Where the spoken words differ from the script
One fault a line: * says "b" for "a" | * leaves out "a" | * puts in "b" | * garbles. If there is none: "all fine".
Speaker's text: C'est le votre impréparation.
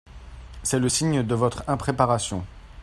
* puts in "signe de"